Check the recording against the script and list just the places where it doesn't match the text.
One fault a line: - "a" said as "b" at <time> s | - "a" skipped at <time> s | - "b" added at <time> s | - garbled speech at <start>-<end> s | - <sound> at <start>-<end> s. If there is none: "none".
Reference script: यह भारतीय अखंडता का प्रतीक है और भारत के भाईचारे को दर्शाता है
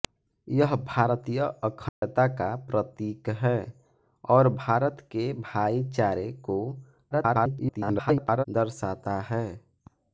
- dropout at 1.9-2.0 s
- garbled speech at 7.1-8.4 s